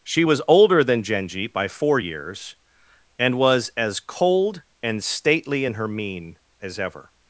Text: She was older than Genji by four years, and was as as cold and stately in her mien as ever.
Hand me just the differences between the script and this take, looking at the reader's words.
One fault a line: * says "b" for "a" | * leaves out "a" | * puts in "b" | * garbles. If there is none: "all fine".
* leaves out "as"